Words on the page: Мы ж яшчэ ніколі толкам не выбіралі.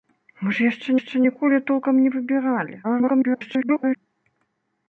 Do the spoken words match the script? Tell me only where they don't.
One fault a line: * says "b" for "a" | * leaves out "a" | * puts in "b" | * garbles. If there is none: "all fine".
* puts in "яшчэ"
* garbles